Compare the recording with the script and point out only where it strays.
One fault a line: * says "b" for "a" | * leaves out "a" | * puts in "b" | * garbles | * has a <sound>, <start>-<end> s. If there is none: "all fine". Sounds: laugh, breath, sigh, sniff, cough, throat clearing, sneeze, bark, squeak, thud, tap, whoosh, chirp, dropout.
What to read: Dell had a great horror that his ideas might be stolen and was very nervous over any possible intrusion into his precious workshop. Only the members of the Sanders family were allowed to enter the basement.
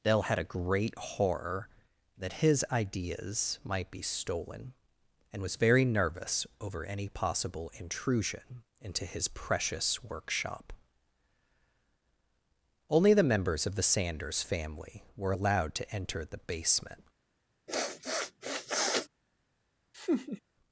* has a sniff, 17.7-19.1 s
* has a laugh, 19.9-20.4 s